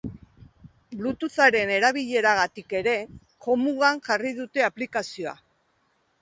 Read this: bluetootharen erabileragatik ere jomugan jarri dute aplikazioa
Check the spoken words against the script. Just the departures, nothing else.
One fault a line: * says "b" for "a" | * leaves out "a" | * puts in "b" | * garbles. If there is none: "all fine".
all fine